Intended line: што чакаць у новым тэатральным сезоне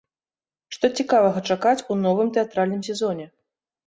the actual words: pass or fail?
fail